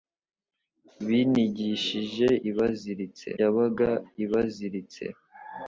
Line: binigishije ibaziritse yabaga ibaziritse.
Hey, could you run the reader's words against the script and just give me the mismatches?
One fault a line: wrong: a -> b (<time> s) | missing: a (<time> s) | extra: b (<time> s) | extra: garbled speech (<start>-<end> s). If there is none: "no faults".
no faults